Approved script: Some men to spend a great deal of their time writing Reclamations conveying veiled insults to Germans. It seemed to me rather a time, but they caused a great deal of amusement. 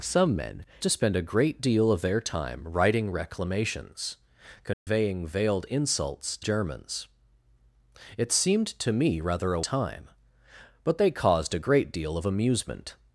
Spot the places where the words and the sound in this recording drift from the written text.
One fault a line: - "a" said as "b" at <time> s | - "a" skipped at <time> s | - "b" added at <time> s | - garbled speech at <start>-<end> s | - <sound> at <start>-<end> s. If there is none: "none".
- dropout at 4.7-4.9 s